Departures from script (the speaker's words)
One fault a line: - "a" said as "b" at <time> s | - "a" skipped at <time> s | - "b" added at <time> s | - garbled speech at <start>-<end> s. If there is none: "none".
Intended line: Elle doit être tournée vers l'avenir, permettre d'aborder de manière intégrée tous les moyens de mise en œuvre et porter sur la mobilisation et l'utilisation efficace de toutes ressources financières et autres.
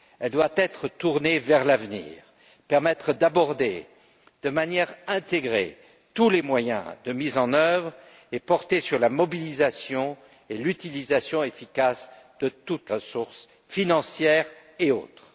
none